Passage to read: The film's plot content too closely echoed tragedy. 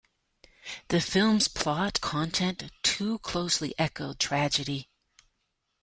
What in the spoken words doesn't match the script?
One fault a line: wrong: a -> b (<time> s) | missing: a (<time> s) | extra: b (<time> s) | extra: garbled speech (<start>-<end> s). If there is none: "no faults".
no faults